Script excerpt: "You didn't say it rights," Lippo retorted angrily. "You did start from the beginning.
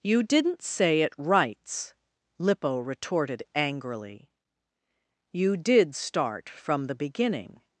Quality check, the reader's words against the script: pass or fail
pass